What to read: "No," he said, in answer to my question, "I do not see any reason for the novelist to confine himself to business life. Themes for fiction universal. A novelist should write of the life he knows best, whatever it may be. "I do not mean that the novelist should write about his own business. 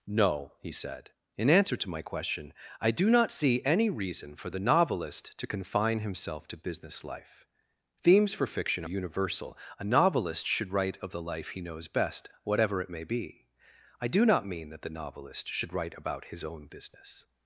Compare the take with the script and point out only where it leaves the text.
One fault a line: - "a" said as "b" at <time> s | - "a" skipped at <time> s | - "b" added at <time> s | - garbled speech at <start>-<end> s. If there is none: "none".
none